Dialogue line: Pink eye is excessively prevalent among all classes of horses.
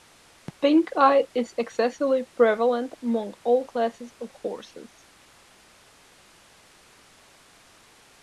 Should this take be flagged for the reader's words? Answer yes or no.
no